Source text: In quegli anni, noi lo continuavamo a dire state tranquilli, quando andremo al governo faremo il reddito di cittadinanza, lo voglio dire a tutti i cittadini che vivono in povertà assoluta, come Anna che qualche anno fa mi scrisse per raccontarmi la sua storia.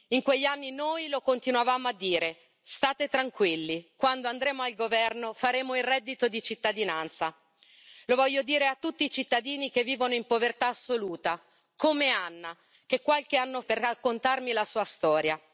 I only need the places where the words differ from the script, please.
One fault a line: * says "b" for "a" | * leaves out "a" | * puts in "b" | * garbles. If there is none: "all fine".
* leaves out "fa mi scrisse"